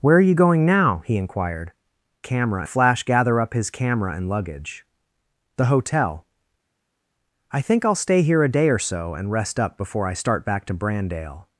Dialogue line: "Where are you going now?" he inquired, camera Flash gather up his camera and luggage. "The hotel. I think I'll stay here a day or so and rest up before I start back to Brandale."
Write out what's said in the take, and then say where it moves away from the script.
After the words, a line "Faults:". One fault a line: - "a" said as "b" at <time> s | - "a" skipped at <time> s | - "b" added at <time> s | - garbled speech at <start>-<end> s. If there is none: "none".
"Where are you going now?" he inquired, camera Flash gather up his camera and luggage. "The hotel. I think I'll stay here a day or so and rest up before I start back to Brandale."
Faults:
none